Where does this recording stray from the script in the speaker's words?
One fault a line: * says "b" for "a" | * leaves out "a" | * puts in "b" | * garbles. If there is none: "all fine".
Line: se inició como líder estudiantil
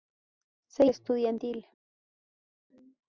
* leaves out "inició como líder"